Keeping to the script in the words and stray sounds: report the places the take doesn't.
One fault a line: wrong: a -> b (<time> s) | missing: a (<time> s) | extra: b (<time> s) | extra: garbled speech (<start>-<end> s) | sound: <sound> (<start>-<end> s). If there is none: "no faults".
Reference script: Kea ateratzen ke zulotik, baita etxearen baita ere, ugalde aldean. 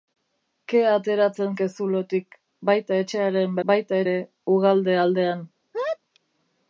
sound: sneeze (5.7-6.0 s)